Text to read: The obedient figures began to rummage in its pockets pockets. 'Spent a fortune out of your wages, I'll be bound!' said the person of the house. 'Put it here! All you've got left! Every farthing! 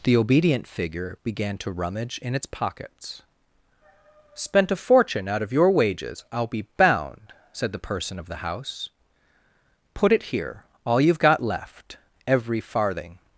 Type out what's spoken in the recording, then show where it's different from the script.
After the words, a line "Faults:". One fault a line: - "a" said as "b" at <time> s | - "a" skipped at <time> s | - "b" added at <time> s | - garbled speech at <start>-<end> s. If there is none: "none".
The obedient figure began to rummage in its pockets. 'Spent a fortune out of your wages, I'll be bound!' said the person of the house. 'Put it here! All you've got left! Every farthing!
Faults:
- "figures" said as "figure" at 0.7 s
- "pockets" skipped at 3.2 s